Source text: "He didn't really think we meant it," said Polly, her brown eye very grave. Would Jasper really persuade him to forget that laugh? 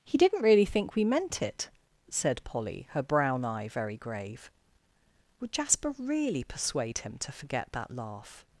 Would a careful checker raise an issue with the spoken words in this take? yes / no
no